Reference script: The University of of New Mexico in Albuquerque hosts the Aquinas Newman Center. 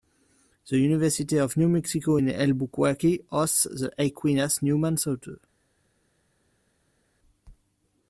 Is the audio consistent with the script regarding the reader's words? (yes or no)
no